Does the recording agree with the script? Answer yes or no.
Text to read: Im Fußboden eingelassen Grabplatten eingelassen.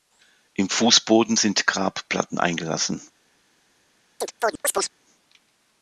no